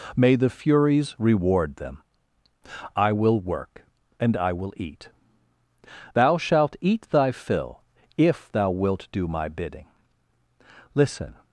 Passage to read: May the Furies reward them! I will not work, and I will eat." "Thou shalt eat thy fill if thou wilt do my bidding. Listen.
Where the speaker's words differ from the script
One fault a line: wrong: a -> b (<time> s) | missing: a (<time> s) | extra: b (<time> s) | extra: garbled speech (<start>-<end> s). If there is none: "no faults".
missing: not (3.4 s)